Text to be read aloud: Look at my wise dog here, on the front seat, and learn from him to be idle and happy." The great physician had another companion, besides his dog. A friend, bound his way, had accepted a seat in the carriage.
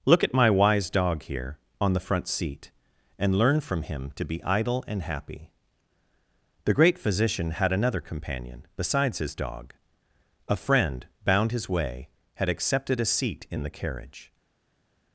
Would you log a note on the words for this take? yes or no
no